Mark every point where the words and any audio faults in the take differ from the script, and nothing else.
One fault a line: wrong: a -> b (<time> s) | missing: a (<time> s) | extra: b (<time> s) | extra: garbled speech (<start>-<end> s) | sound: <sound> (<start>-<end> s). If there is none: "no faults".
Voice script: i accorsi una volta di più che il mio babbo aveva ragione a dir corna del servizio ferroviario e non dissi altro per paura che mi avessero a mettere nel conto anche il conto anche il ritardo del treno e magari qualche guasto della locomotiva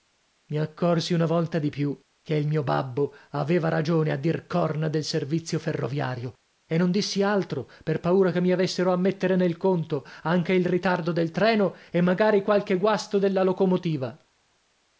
missing: conto anche il (10.7 s)